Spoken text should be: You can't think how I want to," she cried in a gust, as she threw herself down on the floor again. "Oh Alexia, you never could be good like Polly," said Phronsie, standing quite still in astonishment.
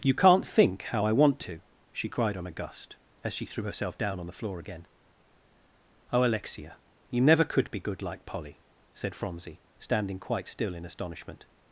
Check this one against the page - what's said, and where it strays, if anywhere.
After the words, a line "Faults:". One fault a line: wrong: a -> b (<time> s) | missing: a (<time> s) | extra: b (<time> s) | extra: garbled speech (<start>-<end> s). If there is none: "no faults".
You can't think how I want to," she cried on a gust, as she threw herself down on the floor again. "Oh Alexia, you never could be good like Polly," said Phronsie, standing quite still in astonishment.
Faults:
wrong: in -> on (2.4 s)